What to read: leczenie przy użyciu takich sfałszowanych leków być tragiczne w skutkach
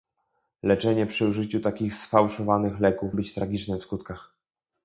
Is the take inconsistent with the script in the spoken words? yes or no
no